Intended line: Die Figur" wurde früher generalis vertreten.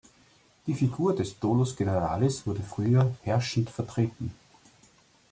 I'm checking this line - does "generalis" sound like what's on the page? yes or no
no